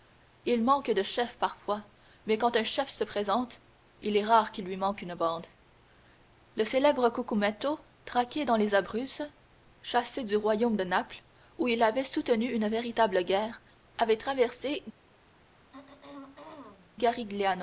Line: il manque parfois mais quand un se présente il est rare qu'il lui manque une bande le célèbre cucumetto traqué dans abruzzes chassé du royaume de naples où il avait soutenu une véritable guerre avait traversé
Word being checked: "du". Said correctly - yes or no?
yes